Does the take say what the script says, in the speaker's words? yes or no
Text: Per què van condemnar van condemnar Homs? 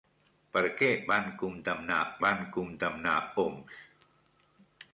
yes